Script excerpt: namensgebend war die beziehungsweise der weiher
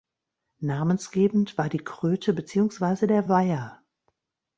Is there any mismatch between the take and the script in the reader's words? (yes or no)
yes